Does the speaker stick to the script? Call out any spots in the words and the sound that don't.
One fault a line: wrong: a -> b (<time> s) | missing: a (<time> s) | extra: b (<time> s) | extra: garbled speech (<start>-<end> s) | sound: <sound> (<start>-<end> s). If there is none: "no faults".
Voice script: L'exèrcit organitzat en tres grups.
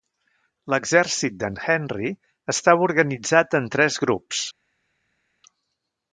extra: d'en Henry estava (1.4 s)